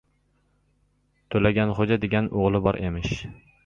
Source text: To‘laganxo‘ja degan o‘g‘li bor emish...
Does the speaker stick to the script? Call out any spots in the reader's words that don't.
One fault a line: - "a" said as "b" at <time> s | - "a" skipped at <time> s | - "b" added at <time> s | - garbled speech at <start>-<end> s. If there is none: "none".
none